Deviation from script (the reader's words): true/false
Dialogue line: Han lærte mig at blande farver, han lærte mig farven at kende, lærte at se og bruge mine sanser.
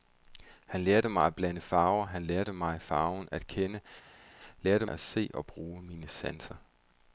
false